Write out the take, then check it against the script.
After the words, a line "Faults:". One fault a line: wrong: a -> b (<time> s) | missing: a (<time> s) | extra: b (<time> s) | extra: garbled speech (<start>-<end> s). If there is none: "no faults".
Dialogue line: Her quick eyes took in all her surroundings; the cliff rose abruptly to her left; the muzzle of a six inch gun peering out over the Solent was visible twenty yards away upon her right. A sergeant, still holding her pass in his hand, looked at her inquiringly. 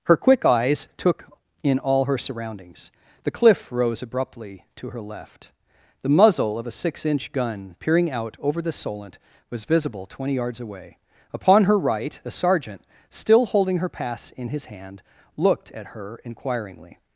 Her quick eyes took in all her surroundings; the cliff rose abruptly to her left; the muzzle of a six inch gun peering out over the Solent was visible twenty yards away upon her right. A sergeant, still holding her pass in his hand, looked at her inquiringly.
Faults:
no faults